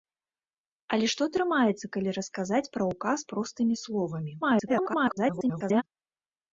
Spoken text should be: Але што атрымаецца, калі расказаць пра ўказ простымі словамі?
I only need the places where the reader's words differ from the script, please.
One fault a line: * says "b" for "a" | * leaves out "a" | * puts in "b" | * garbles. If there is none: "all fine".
* garbles